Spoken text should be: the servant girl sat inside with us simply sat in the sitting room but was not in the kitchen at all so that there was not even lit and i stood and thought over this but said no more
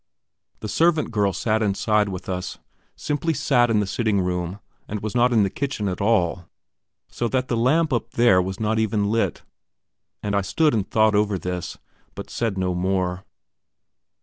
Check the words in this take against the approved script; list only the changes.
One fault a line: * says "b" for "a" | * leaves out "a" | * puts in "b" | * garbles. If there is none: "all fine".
* says "and" for "but"
* puts in "the lamp up"